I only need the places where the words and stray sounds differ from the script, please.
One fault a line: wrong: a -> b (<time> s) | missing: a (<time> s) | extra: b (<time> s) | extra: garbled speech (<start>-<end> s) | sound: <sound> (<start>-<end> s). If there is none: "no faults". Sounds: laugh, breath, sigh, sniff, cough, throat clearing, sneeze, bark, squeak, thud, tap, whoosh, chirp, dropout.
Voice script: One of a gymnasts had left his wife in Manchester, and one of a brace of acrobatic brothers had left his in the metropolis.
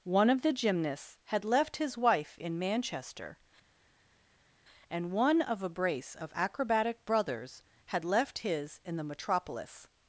wrong: a -> the (0.4 s)